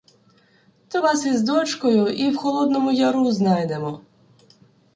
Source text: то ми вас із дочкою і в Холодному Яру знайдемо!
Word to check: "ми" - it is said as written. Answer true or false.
false